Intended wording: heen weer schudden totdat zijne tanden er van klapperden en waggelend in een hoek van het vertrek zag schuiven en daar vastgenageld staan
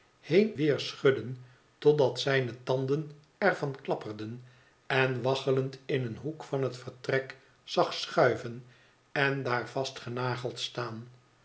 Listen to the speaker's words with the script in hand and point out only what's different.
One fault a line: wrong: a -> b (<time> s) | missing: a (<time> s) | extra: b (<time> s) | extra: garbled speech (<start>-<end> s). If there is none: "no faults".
no faults